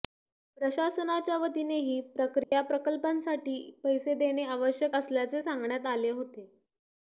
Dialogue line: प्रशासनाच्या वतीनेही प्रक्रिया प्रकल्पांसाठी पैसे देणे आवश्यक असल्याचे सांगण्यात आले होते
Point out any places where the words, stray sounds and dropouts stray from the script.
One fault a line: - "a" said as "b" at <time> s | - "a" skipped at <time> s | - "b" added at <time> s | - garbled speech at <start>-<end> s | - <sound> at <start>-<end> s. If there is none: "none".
- dropout at 2.4-2.5 s